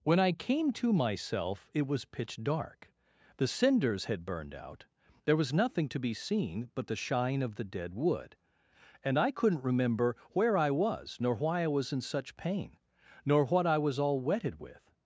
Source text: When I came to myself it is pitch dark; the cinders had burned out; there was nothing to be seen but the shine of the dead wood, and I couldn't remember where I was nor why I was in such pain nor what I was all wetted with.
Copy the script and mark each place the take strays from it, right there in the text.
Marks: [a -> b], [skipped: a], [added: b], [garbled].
When I came to myself it [is -> was] pitch dark; the cinders had burned out; there was nothing to be seen but the shine of the dead wood, and I couldn't remember where I was nor why I was in such pain nor what I was all wetted with.